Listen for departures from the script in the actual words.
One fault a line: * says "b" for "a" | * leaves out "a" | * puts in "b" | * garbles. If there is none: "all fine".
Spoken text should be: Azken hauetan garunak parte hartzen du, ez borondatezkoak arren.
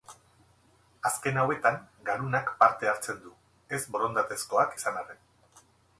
* puts in "izan"